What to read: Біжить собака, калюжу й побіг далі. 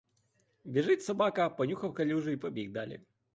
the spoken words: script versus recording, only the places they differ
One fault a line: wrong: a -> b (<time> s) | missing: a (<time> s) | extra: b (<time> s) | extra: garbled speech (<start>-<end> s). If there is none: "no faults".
extra: понюхав (1.5 s)